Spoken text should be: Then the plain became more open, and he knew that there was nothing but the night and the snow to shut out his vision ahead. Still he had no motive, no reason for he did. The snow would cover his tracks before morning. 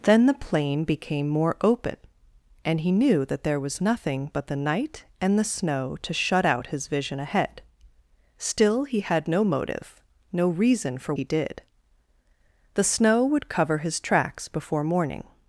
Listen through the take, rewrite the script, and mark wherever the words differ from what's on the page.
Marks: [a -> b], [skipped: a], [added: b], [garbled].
Then the plain became more open, and he knew that there was nothing but the night and the snow to shut out his vision ahead. Still he had no motive, no reason for he did. The snow would cover his tracks before morning.